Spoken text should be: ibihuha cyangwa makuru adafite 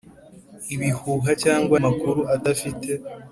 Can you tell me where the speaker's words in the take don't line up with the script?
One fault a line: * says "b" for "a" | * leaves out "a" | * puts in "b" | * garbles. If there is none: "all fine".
all fine